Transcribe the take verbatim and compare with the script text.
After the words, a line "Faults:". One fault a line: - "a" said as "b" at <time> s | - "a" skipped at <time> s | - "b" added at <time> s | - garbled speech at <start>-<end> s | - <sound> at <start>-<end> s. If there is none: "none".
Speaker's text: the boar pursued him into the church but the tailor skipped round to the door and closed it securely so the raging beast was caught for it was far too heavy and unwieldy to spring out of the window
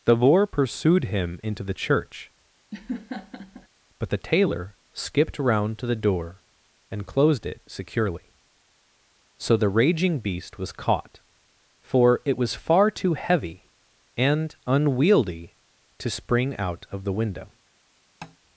the boar pursued him into the church but the tailor skipped round to the door and closed it securely so the raging beast was caught for it was far too heavy and unwieldy to spring out of the window
Faults:
- laugh at 2.7-3.7 s
- tap at 18.2-18.4 s